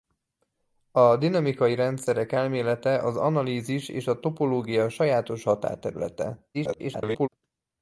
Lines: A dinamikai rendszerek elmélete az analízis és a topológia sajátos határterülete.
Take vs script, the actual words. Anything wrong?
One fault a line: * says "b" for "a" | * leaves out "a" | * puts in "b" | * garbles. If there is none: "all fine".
* garbles